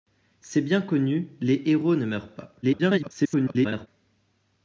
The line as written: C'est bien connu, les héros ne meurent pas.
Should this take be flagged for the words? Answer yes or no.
yes